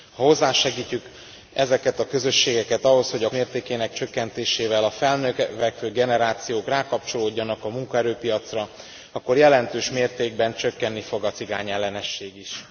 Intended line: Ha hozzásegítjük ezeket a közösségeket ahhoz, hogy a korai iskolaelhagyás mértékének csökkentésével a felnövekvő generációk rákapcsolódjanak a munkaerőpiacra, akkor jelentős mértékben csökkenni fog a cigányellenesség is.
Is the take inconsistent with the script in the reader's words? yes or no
yes